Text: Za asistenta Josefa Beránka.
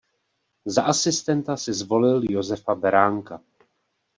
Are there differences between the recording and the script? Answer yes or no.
yes